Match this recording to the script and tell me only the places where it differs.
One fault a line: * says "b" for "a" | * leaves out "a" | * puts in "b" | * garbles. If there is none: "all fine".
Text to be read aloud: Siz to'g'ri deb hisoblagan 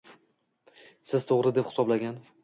all fine